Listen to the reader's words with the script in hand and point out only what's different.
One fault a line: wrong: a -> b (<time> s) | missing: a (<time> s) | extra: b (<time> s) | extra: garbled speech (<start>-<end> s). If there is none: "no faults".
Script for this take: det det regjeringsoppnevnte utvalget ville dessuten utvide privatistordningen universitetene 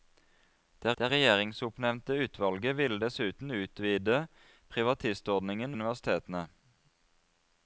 no faults